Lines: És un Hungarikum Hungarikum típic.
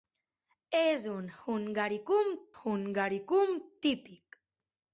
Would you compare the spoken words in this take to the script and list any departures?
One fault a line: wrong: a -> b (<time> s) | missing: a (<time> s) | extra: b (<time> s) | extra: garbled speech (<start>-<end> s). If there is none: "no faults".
no faults